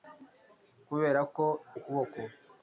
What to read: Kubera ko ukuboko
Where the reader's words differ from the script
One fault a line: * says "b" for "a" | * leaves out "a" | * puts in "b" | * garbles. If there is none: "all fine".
all fine